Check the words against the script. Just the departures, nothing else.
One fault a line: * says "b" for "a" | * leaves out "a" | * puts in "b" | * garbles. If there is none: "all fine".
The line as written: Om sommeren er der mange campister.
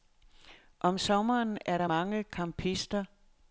all fine